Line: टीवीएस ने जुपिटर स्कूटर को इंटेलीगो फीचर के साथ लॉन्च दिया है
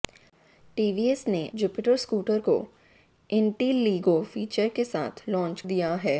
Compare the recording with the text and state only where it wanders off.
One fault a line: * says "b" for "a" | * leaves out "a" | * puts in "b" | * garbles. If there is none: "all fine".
all fine